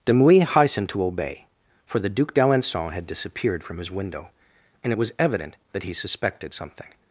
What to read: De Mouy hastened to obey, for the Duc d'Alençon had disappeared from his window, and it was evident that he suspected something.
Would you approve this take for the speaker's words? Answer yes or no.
yes